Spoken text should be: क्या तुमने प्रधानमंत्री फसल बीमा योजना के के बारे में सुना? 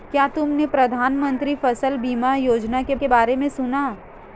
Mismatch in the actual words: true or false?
false